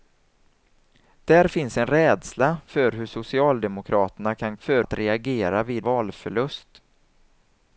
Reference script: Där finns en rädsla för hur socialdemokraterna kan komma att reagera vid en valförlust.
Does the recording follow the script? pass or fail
fail